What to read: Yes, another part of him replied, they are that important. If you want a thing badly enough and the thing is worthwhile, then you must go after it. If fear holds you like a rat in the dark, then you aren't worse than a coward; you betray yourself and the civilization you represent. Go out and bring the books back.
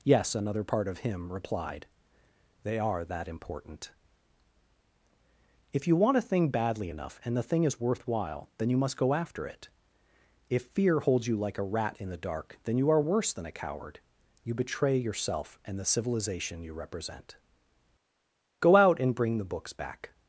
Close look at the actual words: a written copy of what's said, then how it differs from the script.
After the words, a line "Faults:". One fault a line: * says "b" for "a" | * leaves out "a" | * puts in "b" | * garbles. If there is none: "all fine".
Yes, another part of him replied, they are that important. If you want a thing badly enough and the thing is worthwhile, then you must go after it. If fear holds you like a rat in the dark, then you are worse than a coward; you betray yourself and the civilization you represent. Go out and bring the books back.
Faults:
* says "are" for "aren't"